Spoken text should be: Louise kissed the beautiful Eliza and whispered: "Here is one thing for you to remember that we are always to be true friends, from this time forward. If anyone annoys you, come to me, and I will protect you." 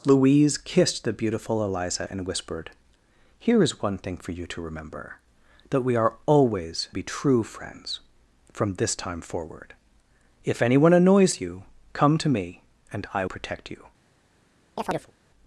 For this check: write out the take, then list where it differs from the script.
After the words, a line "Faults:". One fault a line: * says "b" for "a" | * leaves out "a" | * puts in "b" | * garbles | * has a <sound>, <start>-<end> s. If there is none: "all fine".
Louise kissed the beautiful Eliza and whispered: "Here is one thing for you to remember that we are always be true friends, from this time forward. If anyone annoys you, come to me, and I protect you."
Faults:
* leaves out "to"
* leaves out "will"
* has a chirp, 14.8-15.1 s